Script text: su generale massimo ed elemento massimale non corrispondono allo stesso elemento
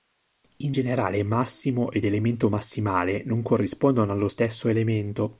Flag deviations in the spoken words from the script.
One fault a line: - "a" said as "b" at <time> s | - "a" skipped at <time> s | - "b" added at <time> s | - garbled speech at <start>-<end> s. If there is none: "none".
- "su" said as "in" at 0.6 s